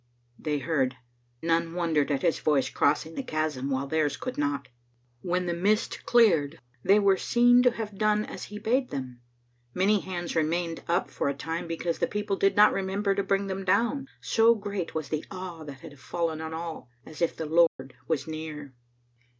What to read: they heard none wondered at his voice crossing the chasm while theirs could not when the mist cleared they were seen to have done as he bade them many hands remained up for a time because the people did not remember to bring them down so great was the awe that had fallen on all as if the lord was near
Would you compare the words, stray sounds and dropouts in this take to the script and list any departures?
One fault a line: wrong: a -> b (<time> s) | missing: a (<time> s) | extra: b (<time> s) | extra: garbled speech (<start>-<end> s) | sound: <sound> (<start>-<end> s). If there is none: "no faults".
sound: dropout (17.7-17.8 s)